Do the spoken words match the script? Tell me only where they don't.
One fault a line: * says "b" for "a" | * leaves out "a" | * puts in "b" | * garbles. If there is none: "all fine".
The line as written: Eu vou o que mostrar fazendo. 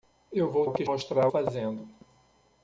all fine